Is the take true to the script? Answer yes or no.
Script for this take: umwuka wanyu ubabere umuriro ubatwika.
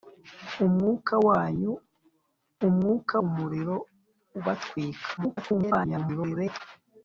no